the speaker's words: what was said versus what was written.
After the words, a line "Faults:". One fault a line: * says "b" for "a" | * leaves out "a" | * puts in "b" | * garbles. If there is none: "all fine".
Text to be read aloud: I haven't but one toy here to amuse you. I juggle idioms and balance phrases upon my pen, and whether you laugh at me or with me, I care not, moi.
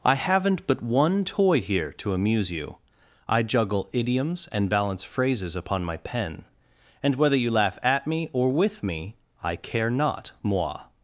I haven't but one toy here to amuse you. I juggle idioms and balance phrases upon my pen, and whether you laugh at me or with me, I care not, moi.
Faults:
all fine